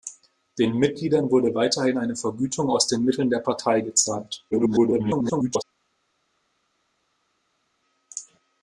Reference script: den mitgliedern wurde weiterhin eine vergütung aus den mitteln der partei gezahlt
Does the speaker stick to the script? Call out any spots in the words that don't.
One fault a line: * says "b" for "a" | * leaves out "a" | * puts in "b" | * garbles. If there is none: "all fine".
* garbles